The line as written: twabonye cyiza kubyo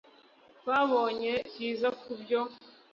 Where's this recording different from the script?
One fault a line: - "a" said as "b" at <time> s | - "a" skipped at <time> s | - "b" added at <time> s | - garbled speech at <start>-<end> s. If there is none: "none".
none